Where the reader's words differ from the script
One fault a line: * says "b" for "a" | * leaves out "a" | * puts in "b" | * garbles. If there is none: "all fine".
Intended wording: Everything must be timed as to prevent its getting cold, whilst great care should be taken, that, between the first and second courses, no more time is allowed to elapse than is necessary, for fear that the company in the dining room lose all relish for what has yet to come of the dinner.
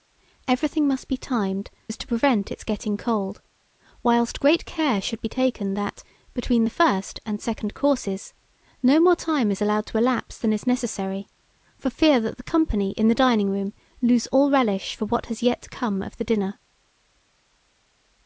all fine